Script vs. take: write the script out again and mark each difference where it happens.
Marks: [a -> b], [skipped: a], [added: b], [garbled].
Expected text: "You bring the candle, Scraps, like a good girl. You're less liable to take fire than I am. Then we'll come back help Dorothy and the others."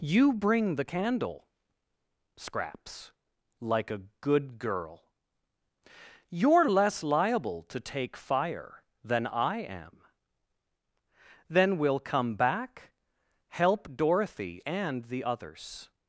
"You bring the candle, Scraps, like a good girl. You're less liable to take fire than I am. Then we'll come back help Dorothy and the others."